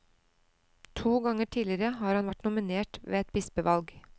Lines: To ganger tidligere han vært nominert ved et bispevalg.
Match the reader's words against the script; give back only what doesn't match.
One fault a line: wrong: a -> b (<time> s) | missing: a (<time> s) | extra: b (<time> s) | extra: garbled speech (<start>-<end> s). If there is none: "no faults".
extra: har (2.0 s)